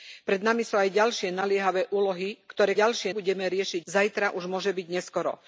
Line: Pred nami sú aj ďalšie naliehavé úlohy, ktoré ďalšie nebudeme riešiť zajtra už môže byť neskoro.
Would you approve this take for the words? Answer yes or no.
yes